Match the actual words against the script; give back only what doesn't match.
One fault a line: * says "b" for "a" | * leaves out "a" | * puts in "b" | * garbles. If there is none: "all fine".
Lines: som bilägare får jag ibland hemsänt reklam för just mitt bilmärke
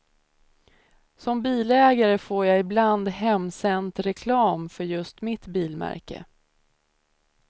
all fine